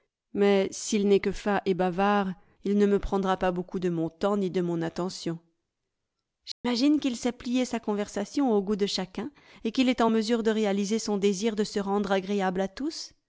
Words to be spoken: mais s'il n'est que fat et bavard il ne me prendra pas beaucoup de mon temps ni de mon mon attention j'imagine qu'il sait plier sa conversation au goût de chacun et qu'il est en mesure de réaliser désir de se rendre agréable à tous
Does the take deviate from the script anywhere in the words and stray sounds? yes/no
yes